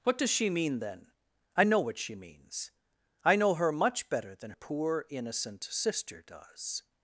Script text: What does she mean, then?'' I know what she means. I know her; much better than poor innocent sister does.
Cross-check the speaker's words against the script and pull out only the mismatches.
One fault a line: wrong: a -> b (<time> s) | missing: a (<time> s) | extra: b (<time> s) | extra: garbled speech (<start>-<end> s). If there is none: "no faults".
no faults